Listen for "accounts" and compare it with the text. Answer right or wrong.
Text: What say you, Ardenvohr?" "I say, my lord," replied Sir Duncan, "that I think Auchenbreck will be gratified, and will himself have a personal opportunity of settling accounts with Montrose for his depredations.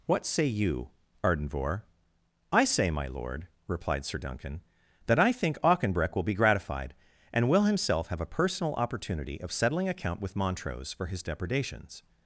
wrong